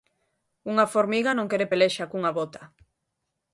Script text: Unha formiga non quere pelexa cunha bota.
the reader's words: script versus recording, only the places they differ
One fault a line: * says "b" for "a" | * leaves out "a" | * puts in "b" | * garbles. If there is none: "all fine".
all fine